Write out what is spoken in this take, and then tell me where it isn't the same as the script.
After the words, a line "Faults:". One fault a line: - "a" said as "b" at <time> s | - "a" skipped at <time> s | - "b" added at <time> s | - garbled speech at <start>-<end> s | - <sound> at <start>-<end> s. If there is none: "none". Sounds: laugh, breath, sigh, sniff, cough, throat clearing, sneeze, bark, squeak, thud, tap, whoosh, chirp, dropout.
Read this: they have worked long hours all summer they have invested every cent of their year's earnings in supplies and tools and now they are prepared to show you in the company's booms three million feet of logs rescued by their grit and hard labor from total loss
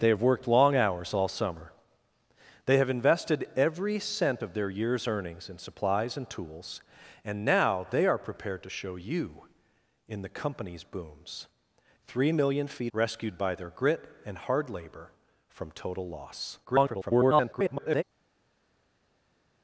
they have worked long hours all summer they have invested every cent of their year's earnings in supplies and tools and now they are prepared to show you in the company's booms three million feet rescued by their grit and hard labor from total loss [garbled]
Faults:
- "of logs" skipped at 12.9 s
- garbled speech at 16.7-18.0 s